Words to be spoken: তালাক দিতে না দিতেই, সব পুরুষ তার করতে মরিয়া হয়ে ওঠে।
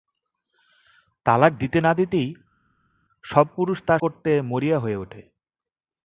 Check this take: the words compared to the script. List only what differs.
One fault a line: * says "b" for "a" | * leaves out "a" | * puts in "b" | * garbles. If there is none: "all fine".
all fine